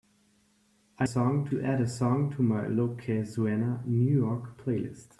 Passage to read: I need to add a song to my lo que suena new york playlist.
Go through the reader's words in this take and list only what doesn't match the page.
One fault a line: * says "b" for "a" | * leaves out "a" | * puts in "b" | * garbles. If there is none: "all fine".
* says "song" for "need"